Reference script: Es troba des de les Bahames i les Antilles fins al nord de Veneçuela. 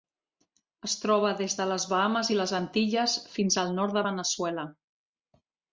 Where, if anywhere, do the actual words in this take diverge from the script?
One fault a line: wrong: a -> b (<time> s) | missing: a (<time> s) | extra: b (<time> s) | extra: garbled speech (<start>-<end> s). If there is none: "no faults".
no faults